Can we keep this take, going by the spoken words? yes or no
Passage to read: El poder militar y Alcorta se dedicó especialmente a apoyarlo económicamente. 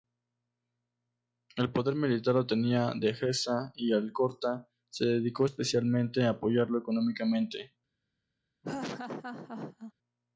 no